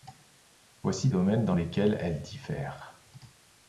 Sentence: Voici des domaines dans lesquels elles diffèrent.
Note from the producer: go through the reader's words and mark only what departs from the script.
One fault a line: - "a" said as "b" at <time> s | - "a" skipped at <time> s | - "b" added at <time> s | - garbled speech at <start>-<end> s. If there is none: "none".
- "des" skipped at 1.1 s